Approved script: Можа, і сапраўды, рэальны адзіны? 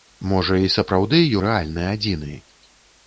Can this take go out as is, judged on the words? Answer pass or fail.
pass